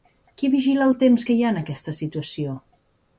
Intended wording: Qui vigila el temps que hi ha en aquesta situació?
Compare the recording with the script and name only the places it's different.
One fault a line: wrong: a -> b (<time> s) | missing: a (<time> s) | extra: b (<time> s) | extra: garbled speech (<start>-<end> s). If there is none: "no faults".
no faults